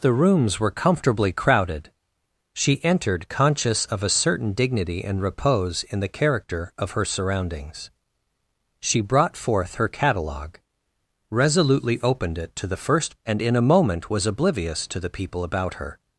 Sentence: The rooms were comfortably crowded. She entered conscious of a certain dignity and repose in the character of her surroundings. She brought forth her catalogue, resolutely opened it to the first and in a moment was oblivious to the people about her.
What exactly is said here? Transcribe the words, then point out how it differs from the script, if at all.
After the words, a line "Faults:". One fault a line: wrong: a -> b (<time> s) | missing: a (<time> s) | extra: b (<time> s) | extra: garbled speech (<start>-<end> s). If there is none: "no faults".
The rooms were comfortably crowded. She entered conscious of a certain dignity and repose in the character of her surroundings. She brought forth her catalogue, resolutely opened it to the first and in a moment was oblivious to the people about her.
Faults:
no faults